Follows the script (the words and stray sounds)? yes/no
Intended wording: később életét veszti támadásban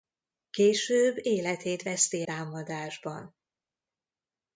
yes